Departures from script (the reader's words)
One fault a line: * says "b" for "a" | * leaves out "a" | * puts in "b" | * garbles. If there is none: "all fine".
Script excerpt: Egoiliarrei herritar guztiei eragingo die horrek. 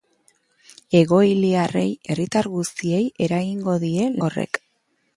all fine